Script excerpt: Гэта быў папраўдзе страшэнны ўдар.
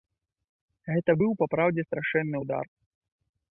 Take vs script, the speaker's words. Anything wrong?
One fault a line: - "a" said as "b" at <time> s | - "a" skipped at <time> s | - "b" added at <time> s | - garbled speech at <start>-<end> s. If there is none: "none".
none